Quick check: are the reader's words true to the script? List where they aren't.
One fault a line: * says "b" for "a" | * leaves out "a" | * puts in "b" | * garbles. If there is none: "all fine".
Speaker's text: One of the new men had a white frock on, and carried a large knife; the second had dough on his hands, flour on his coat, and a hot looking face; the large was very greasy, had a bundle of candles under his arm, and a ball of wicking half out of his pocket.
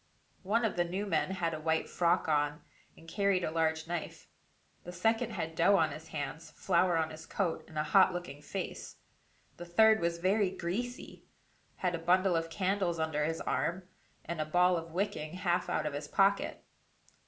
* says "third" for "large"